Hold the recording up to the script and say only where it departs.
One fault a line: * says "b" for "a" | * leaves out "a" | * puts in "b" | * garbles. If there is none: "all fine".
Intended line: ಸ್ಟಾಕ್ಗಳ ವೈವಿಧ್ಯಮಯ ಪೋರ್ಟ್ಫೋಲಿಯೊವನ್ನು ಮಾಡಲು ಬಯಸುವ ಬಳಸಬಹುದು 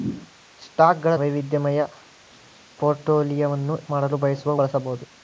all fine